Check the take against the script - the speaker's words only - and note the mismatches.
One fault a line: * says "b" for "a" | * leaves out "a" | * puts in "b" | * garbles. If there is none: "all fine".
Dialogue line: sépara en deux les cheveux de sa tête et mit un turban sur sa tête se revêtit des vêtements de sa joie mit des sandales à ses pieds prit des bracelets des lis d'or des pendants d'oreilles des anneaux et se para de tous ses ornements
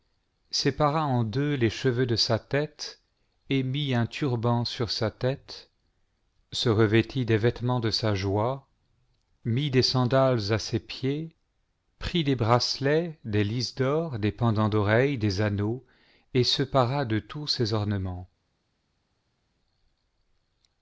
all fine